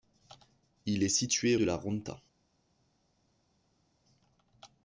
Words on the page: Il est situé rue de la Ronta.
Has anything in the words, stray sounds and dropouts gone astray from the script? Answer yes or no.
yes